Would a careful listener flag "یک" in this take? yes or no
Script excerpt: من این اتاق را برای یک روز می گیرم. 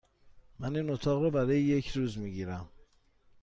no